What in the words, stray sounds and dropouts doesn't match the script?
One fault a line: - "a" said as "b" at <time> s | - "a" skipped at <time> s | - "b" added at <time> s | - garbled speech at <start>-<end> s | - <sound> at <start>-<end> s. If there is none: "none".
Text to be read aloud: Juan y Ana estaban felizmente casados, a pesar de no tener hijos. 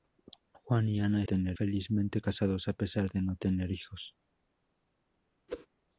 - "estaban" said as "tener" at 1.2 s
- whoosh at 5.5-5.7 s